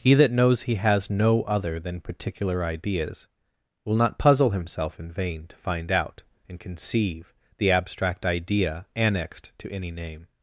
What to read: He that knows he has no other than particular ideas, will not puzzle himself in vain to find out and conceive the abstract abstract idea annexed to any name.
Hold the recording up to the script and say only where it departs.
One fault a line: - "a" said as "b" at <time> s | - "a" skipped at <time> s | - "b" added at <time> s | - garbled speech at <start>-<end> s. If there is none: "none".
- "abstract" skipped at 8.2 s